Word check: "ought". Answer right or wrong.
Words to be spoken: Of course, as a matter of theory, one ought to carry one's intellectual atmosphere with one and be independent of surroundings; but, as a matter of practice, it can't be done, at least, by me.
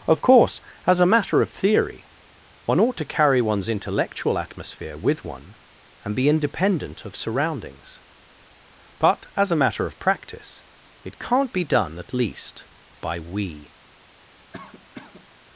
right